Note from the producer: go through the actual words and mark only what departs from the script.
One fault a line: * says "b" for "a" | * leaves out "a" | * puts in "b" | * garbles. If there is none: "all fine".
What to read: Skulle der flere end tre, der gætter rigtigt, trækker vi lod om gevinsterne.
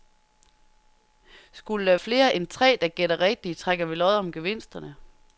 all fine